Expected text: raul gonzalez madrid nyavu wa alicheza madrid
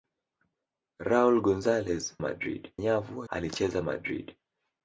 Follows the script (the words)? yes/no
yes